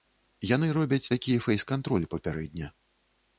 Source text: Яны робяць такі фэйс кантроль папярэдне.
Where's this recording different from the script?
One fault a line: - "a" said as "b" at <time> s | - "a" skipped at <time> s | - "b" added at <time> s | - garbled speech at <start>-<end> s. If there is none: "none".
none